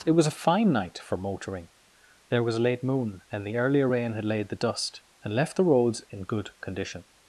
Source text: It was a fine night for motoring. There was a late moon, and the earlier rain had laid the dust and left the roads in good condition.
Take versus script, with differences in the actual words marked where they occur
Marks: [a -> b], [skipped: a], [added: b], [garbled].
It was a fine night for motoring. There was a late moon, and the earlier rain had laid the dust and left the roads in good condition.